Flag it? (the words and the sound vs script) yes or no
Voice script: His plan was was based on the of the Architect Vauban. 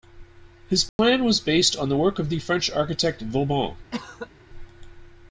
yes